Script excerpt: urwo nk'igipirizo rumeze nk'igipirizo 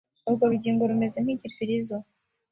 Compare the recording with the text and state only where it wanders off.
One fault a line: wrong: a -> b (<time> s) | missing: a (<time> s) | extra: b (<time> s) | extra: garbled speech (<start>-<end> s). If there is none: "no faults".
wrong: nk'igipirizo -> rugingo (0.5 s)